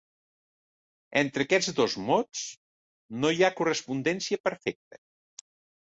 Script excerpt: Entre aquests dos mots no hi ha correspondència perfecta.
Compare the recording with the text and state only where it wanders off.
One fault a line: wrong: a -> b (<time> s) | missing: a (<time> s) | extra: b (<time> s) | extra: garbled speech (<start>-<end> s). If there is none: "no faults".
no faults